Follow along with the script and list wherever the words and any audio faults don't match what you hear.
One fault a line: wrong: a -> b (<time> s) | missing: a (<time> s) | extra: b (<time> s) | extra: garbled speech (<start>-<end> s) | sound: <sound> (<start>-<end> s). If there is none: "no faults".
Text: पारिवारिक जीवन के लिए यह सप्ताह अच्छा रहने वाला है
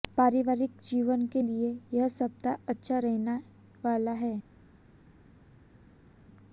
no faults